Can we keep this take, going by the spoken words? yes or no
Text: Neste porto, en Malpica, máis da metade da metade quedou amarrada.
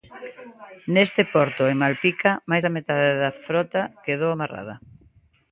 no